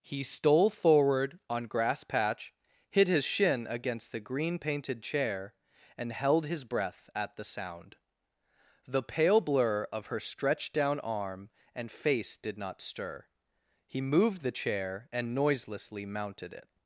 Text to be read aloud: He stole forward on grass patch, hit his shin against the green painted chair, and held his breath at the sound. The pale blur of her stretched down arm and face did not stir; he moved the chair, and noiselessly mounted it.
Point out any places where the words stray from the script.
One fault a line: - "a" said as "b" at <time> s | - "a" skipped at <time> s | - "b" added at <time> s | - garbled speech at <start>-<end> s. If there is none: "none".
none